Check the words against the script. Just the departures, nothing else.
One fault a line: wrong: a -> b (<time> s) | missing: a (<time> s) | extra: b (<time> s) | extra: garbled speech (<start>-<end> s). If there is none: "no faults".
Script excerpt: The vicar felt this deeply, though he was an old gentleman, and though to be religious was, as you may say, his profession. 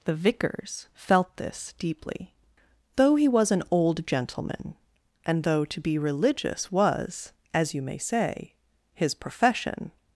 wrong: vicar -> vicars (0.1 s)